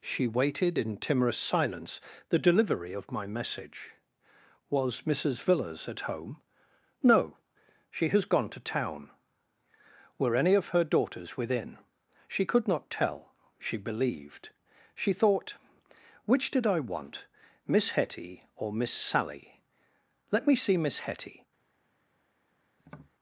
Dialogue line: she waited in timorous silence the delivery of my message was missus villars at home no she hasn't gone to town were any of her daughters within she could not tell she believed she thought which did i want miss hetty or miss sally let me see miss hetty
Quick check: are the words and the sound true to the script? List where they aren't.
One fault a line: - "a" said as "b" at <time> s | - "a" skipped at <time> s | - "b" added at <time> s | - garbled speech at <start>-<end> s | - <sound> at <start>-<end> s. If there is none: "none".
- "hasn't" said as "has" at 8.1 s
- tap at 22.8-23.1 s